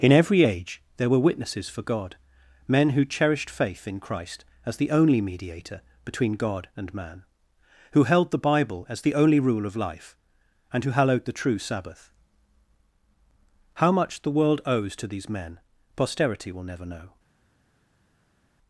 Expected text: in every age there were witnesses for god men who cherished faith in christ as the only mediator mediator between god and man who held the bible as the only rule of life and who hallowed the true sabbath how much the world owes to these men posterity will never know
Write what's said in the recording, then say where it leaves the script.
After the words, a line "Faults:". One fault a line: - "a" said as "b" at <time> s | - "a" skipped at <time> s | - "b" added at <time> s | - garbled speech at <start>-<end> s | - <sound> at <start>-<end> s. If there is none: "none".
in every age there were witnesses for god men who cherished faith in christ as the only mediator between god and man who held the bible as the only rule of life and who hallowed the true sabbath how much the world owes to these men posterity will never know
Faults:
- "mediator" skipped at 5.8 s